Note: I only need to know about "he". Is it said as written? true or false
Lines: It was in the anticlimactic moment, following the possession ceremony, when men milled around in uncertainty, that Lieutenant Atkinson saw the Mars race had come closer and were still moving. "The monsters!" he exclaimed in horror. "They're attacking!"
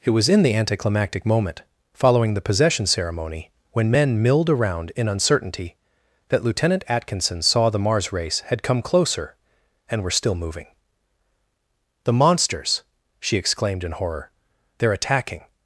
false